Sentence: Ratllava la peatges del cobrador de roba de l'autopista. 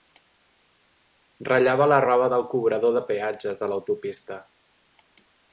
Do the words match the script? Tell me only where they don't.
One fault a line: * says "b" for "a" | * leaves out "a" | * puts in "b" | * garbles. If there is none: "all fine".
* says "roba" for "peatges"
* says "peatges" for "roba"